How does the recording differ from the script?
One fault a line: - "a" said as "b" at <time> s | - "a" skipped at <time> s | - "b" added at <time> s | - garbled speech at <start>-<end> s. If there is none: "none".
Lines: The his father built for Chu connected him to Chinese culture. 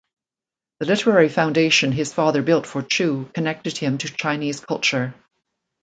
- "literary foundation" added at 0.9 s